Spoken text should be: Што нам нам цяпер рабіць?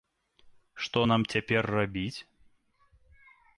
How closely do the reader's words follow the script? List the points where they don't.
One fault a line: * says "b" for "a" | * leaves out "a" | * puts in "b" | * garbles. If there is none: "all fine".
* leaves out "нам"